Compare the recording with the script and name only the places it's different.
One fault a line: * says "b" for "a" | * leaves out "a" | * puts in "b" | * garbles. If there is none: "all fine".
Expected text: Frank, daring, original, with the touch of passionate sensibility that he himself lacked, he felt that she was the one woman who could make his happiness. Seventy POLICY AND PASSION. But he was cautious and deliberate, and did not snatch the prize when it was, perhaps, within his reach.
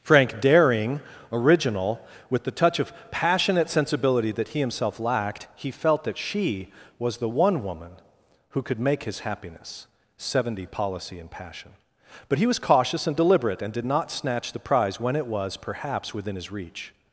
all fine